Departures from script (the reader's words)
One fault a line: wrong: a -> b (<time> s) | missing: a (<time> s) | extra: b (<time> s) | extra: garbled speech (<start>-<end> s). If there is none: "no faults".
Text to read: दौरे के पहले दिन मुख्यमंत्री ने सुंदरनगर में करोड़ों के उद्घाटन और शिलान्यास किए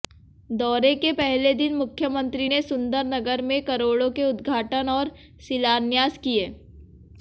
no faults